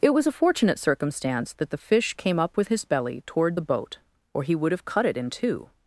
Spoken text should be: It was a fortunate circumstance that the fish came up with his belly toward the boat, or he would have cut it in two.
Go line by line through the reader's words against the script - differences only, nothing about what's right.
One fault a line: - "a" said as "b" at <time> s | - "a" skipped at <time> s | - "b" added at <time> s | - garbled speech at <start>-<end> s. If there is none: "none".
none